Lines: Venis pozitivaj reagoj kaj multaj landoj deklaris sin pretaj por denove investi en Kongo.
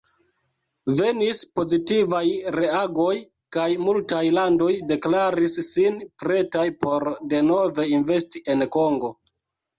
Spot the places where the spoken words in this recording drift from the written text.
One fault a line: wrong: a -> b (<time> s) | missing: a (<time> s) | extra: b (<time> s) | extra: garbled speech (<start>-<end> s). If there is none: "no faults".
no faults